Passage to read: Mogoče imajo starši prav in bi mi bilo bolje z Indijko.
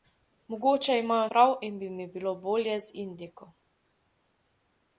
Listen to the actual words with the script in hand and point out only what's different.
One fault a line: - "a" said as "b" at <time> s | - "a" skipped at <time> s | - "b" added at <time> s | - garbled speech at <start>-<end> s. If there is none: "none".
- "starši" skipped at 1.3 s